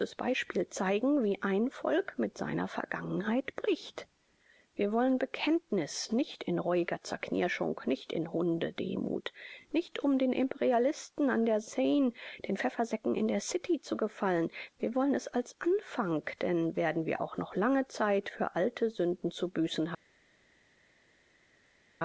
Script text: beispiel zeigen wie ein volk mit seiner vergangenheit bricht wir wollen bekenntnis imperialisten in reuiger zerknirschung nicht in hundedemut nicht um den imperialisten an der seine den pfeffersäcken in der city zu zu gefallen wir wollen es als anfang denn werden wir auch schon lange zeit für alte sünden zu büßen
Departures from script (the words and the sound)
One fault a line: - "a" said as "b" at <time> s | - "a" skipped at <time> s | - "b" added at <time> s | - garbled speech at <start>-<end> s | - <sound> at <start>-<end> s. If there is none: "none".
- "imperialisten" said as "nicht" at 6.1 s
- "zu" skipped at 13.9 s
- "schon" said as "noch" at 17.4 s